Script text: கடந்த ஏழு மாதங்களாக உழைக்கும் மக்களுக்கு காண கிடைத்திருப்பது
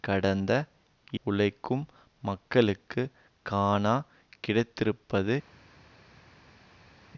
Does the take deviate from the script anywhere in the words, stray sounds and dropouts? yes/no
yes